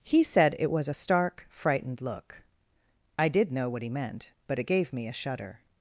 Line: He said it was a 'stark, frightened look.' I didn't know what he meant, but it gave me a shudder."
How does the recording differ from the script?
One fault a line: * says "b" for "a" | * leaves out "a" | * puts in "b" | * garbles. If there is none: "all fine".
* says "did" for "didn't"